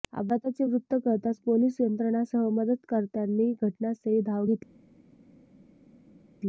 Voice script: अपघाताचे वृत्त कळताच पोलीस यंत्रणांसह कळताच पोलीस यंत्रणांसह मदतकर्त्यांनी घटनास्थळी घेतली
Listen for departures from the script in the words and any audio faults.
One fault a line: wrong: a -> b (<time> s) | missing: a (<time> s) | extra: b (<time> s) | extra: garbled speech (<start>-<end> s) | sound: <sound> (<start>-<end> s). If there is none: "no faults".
missing: कळताच पोलीस यंत्रणांसह (2.5 s)
extra: धाव (4.2 s)